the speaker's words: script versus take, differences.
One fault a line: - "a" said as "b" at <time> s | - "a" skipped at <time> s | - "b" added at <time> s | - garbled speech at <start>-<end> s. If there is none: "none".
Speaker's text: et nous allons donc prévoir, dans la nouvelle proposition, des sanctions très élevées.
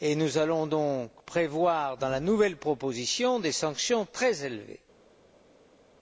none